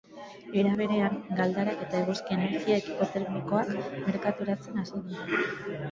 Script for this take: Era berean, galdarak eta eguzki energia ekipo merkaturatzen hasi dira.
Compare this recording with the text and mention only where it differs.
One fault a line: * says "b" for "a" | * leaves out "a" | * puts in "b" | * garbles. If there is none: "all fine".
* puts in "termikoak"